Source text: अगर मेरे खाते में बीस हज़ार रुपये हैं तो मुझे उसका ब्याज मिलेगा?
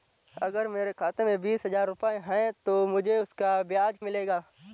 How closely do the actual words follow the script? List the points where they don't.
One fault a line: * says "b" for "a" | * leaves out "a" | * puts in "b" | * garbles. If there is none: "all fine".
all fine